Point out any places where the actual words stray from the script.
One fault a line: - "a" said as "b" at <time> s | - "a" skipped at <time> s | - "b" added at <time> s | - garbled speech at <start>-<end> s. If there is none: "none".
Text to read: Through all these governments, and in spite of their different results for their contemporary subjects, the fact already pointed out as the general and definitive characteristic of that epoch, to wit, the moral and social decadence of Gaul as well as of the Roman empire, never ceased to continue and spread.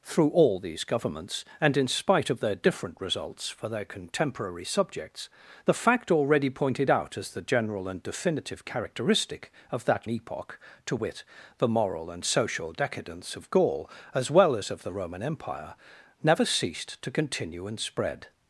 none